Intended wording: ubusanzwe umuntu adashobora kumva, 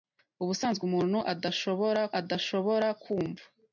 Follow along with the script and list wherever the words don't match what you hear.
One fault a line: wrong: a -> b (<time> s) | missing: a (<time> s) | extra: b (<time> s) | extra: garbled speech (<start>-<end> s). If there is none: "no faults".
extra: adashobora (2.2 s)